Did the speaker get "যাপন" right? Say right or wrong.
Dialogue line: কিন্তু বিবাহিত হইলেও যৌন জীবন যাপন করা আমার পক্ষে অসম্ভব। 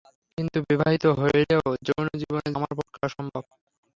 wrong